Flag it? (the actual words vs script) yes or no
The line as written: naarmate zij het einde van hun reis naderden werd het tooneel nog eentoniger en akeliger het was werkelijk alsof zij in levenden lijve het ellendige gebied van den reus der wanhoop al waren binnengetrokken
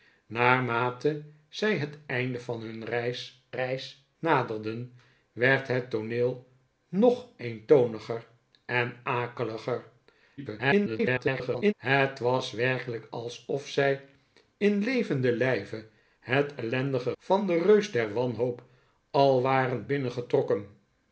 yes